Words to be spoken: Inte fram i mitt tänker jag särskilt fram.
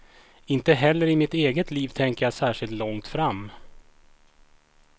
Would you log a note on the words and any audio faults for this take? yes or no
yes